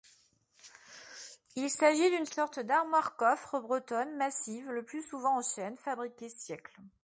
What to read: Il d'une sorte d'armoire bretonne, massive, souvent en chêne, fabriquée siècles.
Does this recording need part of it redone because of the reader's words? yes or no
yes